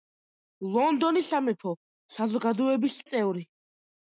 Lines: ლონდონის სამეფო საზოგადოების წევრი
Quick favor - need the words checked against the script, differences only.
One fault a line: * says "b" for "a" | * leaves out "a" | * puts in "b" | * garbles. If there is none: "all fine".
all fine